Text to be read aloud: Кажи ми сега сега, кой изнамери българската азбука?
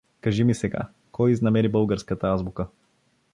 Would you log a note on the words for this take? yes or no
yes